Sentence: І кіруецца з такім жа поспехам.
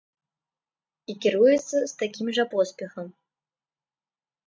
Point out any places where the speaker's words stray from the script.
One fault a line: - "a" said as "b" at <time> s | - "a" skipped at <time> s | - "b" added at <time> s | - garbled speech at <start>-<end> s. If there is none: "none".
none